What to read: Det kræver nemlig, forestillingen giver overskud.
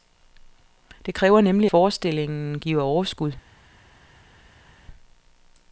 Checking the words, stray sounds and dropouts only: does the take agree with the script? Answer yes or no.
yes